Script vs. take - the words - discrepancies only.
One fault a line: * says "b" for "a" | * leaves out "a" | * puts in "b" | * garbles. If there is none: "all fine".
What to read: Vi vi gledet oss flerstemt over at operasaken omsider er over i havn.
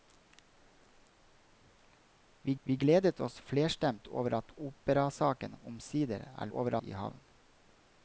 all fine